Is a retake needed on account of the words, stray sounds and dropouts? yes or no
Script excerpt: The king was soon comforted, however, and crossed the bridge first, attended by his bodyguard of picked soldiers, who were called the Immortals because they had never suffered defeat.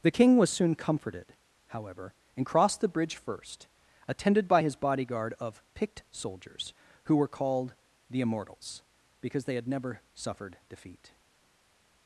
no